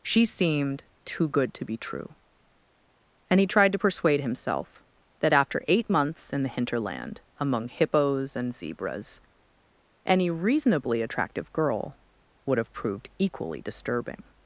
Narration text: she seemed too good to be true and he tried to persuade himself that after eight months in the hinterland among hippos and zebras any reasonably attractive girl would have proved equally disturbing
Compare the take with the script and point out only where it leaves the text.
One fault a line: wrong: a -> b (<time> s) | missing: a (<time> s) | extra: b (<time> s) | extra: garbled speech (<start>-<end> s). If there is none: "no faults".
no faults